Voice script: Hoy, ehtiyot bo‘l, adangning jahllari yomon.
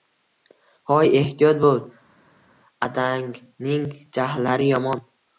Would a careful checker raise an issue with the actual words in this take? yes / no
no